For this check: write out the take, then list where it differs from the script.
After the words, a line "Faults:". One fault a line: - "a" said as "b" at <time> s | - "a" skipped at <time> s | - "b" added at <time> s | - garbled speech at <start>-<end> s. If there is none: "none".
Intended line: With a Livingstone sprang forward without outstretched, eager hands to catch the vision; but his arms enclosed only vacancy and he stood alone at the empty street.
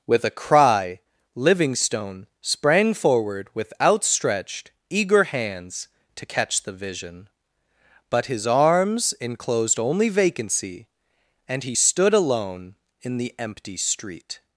With a cry, Livingstone sprang forward with outstretched, eager hands to catch the vision; but his arms enclosed only vacancy and he stood alone in the empty street.
Faults:
- "cry" added at 0.3 s
- "without" said as "with" at 3.5 s
- "at" said as "in" at 13.0 s